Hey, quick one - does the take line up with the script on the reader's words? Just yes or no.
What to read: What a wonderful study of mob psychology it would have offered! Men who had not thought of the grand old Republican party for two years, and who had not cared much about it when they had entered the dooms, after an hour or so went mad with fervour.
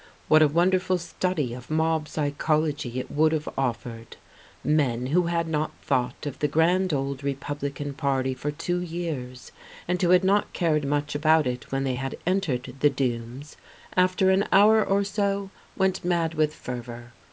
yes